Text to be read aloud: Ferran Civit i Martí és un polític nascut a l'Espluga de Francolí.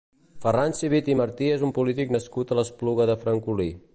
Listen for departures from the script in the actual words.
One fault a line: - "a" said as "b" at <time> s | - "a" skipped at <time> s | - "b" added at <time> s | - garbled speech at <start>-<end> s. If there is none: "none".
none